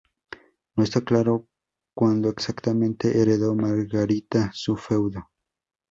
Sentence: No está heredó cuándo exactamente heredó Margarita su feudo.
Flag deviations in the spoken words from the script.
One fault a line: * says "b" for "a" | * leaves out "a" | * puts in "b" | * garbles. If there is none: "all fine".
* says "claro" for "heredó"